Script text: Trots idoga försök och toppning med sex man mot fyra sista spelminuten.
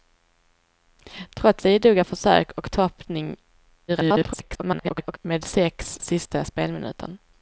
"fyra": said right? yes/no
no